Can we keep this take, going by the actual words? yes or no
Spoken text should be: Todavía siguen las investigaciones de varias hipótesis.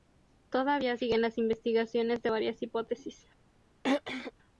yes